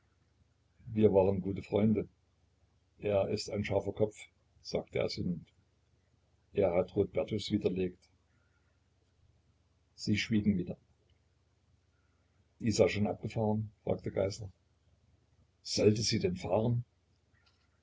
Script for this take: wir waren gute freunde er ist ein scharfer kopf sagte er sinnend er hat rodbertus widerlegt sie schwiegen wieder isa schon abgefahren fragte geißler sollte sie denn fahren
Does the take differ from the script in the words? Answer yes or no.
no